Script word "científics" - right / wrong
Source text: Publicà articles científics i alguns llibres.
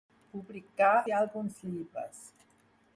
wrong